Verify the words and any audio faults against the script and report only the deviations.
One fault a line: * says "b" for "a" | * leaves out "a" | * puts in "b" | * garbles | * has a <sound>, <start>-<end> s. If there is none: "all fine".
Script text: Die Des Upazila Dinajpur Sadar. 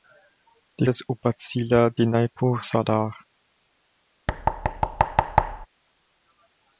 * has a thud, 4.3-5.7 s